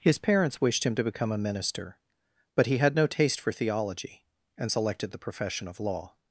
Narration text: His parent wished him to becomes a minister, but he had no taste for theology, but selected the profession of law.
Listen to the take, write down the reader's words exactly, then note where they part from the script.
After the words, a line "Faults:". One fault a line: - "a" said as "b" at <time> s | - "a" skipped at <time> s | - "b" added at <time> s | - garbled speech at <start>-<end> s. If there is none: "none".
His parents wished him to become a minister, but he had no taste for theology, and selected the profession of law.
Faults:
- "parent" said as "parents" at 0.2 s
- "becomes" said as "become" at 1.0 s
- "but" said as "and" at 4.6 s